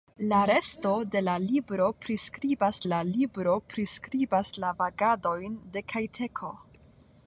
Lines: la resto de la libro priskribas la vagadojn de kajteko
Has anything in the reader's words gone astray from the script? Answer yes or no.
yes